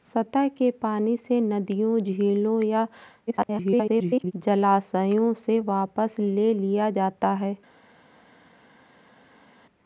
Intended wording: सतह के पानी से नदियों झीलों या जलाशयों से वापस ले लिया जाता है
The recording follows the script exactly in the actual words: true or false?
false